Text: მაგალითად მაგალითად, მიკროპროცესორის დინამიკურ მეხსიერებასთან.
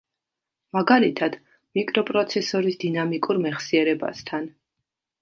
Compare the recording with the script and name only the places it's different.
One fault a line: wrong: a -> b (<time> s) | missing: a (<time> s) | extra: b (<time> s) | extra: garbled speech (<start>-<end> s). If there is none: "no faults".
missing: მაგალითად (1.4 s)